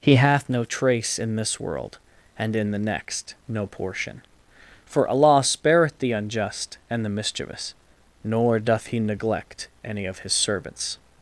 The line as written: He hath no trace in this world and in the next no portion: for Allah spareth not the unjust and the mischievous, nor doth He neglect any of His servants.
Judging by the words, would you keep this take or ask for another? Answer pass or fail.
fail